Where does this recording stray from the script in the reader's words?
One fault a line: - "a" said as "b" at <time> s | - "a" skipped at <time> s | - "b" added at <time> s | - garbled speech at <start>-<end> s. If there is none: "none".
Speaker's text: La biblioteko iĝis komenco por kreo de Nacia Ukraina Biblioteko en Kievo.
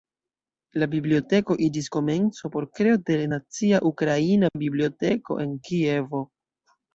none